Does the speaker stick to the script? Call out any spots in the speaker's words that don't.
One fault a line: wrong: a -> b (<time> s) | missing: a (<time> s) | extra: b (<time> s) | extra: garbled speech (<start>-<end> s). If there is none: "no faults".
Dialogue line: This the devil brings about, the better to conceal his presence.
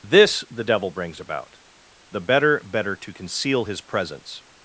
extra: better (2.6 s)